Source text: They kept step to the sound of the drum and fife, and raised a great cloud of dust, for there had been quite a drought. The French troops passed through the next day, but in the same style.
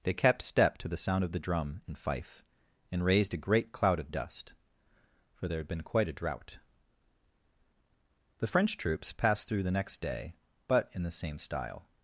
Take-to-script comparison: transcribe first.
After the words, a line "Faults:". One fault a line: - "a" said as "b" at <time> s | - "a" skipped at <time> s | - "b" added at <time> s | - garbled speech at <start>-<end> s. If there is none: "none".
They kept step to the sound of the drum and fife, and raised a great cloud of dust, for there had been quite a drought. The French troops passed through the next day, but in the same style.
Faults:
none